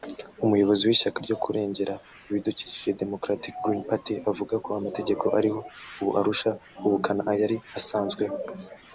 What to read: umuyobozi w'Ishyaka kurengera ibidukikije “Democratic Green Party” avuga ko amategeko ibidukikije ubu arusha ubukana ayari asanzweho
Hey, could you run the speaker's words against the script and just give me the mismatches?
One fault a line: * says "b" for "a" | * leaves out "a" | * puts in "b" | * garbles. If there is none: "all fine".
* puts in "ryo"
* says "ariho" for "ibidukikije"